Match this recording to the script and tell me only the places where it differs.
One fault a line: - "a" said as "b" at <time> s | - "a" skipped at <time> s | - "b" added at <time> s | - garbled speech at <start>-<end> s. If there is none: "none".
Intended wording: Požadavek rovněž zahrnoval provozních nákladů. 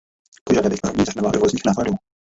none